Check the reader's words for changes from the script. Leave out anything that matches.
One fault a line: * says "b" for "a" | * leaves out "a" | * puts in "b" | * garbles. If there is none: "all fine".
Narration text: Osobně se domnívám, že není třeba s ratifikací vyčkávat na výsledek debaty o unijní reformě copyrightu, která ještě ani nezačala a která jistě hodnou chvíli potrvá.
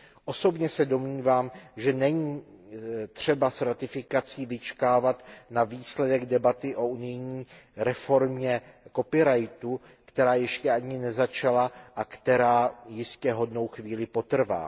all fine